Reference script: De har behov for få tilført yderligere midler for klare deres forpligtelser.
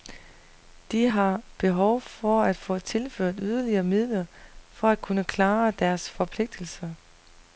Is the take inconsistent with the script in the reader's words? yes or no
yes